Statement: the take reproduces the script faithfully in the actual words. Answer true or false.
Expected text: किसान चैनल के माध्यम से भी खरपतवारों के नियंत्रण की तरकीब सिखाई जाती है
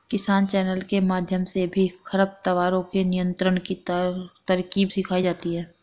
true